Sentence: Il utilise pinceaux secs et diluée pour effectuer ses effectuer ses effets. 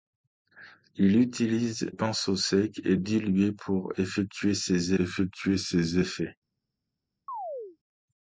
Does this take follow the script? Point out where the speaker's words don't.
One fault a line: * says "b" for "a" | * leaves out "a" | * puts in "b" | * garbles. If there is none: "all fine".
all fine